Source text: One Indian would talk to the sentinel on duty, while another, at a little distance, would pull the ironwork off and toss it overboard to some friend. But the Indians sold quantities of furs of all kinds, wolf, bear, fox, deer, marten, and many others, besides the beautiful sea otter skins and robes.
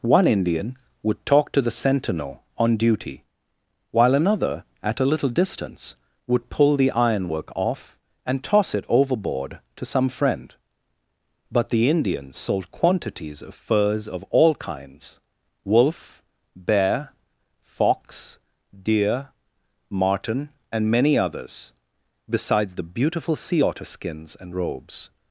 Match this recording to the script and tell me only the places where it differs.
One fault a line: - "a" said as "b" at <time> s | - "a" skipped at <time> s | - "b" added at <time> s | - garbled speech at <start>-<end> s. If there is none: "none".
none